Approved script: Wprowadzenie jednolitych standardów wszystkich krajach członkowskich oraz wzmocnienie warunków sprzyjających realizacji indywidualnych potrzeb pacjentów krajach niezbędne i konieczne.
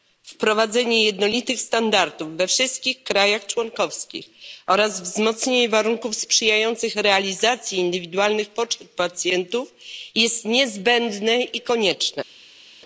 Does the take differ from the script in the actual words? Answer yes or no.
yes